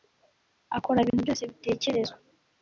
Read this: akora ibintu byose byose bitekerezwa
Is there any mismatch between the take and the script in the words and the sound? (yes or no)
yes